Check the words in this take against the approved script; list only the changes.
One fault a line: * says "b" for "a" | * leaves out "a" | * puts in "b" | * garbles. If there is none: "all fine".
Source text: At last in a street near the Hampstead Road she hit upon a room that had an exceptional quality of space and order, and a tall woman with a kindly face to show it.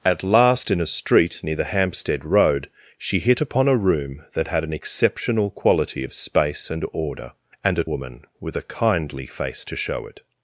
* leaves out "tall"